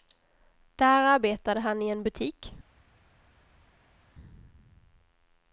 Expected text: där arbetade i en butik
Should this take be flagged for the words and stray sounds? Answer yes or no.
yes